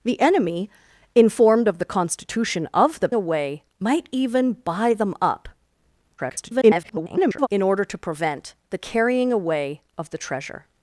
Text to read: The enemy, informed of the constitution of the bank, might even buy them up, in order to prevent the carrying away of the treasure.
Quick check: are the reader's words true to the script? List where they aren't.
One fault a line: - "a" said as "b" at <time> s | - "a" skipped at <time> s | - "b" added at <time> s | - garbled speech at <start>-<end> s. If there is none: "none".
- "bank" said as "away" at 3.1 s
- garbled speech at 6.2-7.5 s